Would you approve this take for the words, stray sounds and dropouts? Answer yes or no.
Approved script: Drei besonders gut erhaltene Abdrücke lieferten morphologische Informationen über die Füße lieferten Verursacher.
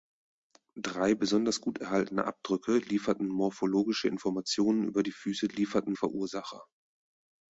yes